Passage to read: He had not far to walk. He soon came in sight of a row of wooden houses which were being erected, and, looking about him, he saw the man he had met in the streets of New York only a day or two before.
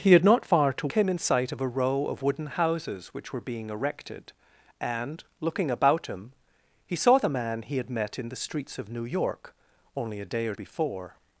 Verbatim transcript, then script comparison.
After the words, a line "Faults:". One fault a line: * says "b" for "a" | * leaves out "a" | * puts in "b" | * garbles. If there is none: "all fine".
He had not far to came in sight of a row of wooden houses which were being erected, and, looking about him, he saw the man he had met in the streets of New York only a day or before.
Faults:
* leaves out "walk He soon"
* leaves out "two"